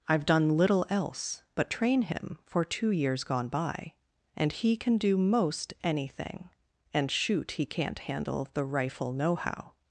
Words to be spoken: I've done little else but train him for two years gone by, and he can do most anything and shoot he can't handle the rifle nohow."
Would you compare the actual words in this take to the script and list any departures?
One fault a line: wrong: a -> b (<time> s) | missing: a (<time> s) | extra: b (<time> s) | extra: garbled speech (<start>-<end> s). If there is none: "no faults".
no faults